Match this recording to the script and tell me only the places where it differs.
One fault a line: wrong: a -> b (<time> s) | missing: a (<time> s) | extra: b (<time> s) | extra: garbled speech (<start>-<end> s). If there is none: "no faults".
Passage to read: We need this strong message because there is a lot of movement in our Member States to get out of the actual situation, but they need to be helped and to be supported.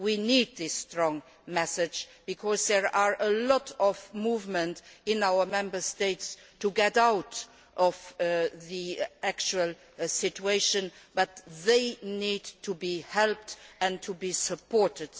no faults